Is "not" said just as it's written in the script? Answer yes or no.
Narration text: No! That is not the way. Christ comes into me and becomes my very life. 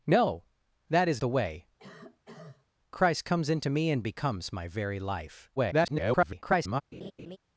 no